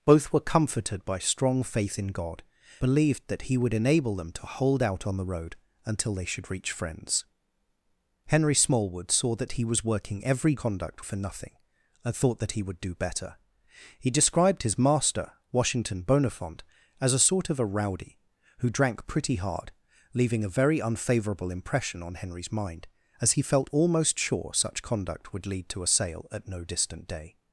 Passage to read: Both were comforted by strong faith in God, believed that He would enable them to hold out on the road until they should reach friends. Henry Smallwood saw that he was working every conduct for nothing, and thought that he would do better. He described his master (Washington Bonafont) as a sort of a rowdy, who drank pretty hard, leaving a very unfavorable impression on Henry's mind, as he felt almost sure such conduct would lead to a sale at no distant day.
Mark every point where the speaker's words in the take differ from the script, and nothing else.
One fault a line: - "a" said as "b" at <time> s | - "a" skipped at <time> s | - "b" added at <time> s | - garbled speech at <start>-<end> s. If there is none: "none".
none